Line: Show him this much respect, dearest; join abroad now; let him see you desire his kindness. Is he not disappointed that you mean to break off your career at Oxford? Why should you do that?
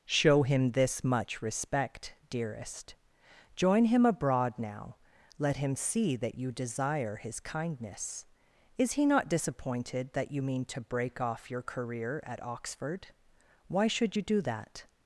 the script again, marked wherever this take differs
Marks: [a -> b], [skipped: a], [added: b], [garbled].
Show him this much respect, dearest; join [added: him] abroad now; let him see [added: that] you desire his kindness. Is he not disappointed that you mean to break off your career at Oxford? Why should you do that?